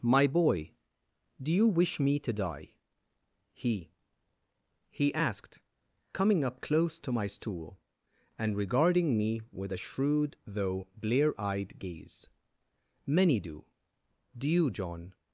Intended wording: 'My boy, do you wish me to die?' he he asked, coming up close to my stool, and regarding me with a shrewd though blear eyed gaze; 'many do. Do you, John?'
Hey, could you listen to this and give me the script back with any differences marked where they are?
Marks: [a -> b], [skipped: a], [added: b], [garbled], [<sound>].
'My boy, do you wish me to die?' he he asked, coming up close to my stool, and regarding me with a shrewd though blear eyed gaze; 'many do. Do you, John?'